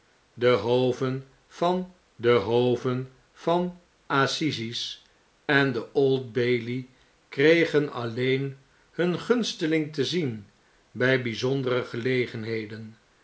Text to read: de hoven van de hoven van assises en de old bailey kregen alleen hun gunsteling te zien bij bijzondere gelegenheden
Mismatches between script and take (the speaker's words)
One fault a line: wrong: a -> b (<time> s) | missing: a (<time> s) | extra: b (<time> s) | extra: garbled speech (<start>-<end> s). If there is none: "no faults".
no faults